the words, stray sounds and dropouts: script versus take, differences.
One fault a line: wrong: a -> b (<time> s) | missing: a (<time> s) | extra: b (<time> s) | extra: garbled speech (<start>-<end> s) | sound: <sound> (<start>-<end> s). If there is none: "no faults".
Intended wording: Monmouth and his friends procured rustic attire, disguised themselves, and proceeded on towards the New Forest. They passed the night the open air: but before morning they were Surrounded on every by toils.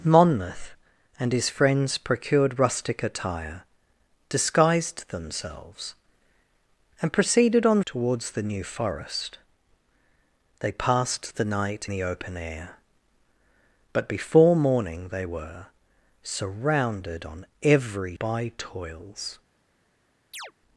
sound: chirp (20.3-20.5 s)